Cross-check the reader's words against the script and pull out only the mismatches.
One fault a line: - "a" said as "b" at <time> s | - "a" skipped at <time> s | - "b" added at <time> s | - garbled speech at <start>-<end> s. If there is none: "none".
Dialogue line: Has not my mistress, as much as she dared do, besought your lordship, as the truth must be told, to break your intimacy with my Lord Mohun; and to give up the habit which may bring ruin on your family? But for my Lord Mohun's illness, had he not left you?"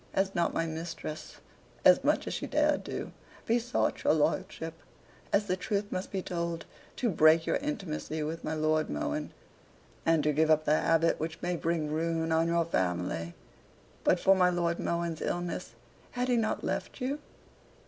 none